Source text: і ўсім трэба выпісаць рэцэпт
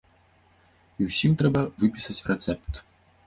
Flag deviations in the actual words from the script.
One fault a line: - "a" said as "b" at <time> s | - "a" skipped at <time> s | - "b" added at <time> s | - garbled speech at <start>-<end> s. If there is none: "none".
none